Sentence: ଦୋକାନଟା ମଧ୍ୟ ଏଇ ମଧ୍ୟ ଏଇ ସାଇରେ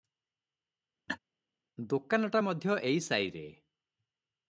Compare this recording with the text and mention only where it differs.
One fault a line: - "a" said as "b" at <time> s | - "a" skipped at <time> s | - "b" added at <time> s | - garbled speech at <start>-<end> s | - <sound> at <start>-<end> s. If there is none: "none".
- laugh at 1.1-1.2 s
- "ମଧ୍ୟ ଏଇ" skipped at 3.0 s